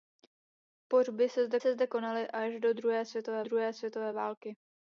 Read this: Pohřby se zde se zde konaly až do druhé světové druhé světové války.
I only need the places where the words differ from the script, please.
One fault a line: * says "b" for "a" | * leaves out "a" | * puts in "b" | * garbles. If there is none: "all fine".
all fine